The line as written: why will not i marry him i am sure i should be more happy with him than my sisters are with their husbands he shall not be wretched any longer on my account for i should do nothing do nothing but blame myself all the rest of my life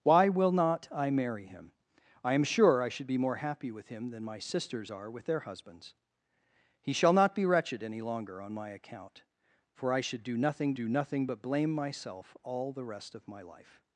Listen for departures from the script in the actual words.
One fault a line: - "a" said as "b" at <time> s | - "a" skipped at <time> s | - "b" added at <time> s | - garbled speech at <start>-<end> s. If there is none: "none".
none